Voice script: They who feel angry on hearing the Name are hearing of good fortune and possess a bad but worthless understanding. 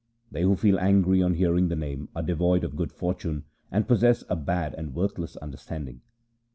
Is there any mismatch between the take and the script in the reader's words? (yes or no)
yes